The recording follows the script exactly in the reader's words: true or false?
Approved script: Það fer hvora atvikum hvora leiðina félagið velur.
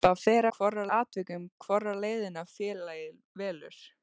true